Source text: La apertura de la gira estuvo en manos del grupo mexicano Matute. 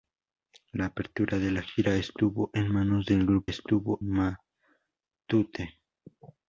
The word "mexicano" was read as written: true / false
false